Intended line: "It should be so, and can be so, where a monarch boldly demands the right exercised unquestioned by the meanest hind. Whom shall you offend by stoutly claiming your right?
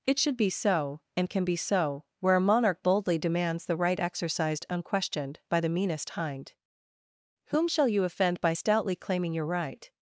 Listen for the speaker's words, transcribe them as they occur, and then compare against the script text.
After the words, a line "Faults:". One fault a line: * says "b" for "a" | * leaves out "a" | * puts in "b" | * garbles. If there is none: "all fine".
"It should be so, and can be so, where a monarch boldly demands the right exercised unquestioned by the meanest hind. Whom shall you offend by stoutly claiming your right?
Faults:
all fine